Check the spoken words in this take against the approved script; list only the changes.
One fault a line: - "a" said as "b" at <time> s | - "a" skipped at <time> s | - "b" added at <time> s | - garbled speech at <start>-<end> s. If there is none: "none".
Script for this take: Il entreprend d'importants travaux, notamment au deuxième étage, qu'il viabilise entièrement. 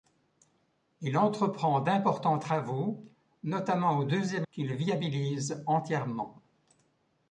- "étage" skipped at 4.5 s